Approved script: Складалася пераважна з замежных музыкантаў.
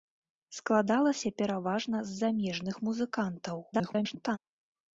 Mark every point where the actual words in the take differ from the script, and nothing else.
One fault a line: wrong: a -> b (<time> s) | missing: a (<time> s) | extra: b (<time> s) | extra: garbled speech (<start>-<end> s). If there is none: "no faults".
extra: garbled speech (3.7-4.4 s)